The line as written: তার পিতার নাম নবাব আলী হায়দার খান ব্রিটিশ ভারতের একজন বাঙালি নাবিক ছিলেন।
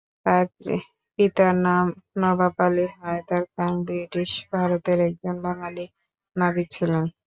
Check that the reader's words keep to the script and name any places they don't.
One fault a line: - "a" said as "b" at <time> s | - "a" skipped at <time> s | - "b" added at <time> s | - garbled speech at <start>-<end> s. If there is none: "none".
none